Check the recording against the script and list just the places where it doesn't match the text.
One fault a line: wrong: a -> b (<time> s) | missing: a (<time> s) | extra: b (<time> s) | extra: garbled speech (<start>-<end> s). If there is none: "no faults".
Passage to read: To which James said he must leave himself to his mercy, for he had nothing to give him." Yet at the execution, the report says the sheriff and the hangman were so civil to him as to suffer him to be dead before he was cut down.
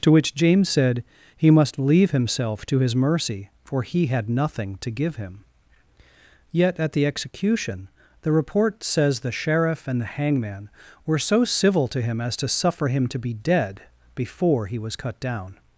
no faults